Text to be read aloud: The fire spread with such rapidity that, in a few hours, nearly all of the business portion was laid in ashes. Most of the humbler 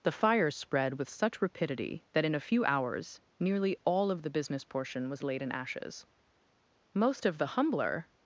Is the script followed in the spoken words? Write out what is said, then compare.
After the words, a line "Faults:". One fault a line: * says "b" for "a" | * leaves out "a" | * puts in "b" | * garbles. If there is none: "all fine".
The fire spread with such rapidity that, in a few hours, nearly all of the business portion was laid in ashes. Most of the humbler
Faults:
all fine